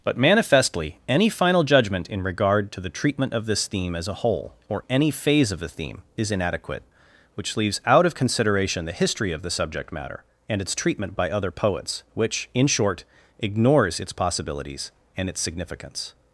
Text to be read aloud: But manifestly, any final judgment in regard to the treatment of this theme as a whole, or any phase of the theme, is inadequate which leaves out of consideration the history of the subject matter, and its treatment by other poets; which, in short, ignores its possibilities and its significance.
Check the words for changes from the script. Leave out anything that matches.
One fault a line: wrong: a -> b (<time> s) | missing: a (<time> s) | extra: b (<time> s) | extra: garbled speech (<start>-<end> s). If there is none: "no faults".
no faults